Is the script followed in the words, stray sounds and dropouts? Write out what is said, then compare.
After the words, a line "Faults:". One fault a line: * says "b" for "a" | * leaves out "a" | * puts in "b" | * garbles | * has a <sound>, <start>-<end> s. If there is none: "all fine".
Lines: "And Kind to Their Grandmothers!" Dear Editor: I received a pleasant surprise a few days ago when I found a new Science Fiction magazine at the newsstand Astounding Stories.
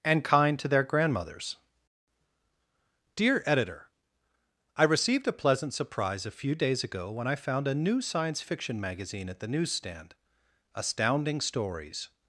"And Kind to Their Grandmothers!" Dear Editor: I received a pleasant surprise a few days ago when I found a new Science Fiction magazine at the newsstand Astounding Stories.
Faults:
all fine